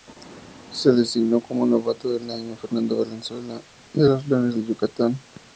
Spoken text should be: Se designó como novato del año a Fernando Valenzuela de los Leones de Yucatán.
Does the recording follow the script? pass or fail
pass